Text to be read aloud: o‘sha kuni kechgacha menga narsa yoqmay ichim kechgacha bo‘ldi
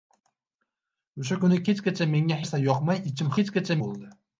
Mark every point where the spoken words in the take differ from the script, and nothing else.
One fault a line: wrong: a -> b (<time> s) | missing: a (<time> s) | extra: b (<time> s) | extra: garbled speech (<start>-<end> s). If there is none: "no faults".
no faults